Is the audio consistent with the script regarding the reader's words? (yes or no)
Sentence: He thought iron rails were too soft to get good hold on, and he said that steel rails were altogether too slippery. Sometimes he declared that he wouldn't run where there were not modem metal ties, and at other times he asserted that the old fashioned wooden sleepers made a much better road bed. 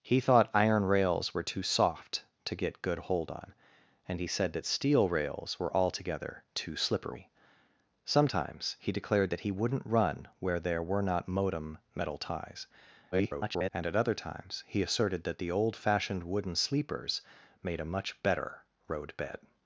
no